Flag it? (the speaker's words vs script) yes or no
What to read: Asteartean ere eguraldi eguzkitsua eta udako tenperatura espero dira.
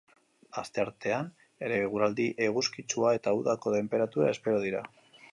no